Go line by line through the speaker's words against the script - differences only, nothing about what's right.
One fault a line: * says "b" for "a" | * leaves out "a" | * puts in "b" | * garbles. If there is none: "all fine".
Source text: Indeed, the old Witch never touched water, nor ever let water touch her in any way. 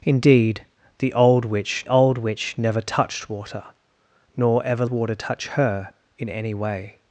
* puts in "old Witch"
* leaves out "let"